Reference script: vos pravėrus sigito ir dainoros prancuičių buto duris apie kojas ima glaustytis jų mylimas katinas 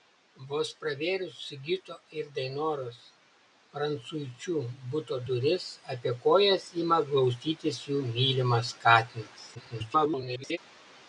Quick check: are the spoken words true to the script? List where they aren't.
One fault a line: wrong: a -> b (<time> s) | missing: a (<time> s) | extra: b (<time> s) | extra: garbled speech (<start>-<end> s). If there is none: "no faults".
extra: garbled speech (9.5-10.6 s)